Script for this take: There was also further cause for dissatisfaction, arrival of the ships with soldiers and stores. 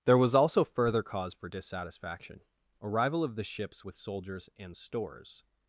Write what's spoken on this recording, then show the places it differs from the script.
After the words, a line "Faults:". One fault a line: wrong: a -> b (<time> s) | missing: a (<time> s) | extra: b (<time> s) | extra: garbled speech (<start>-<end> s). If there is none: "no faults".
There was also further cause for dissatisfaction, arrival of the ships with soldiers and stores.
Faults:
no faults